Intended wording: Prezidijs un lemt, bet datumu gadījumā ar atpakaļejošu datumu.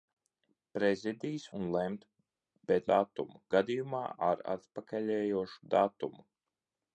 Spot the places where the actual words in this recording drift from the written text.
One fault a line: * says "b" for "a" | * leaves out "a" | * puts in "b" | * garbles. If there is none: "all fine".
all fine